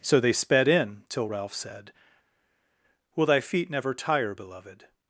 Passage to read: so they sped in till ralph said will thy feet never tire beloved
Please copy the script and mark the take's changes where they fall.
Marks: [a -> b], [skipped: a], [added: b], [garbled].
so they sped in till ralph said will thy feet never tire beloved